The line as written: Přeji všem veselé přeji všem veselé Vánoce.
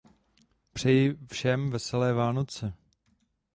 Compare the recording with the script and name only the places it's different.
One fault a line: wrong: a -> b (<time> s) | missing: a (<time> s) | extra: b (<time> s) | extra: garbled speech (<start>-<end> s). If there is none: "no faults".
missing: přeji všem veselé (2.1 s)